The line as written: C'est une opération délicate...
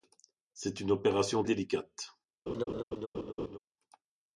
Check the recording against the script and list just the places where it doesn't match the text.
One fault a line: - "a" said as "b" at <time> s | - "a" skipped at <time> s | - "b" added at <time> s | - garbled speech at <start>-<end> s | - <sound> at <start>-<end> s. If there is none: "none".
- laugh at 2.5-3.6 s